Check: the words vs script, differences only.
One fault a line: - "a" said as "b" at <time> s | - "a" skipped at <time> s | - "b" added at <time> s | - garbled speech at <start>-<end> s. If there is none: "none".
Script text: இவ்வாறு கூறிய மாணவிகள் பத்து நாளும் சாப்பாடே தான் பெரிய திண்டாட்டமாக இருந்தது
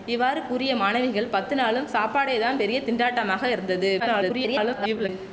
- garbled speech at 4.0-5.1 s